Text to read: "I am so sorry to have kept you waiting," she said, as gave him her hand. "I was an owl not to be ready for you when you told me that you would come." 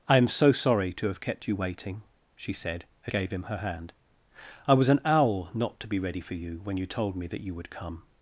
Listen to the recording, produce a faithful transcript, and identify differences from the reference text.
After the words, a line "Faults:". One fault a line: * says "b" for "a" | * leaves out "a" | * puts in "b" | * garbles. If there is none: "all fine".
"I am so sorry to have kept you waiting," she said, as gave him her hand. "I was an owl not to be ready for you when you told me that you would come."
Faults:
all fine